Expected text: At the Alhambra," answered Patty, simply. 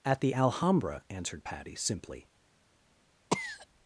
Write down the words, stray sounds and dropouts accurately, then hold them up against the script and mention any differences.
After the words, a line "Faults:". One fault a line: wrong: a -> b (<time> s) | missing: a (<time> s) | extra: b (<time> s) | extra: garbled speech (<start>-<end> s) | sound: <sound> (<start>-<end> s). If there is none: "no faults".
At the Alhambra," answered Patty, simply.
Faults:
sound: cough (3.3-3.7 s)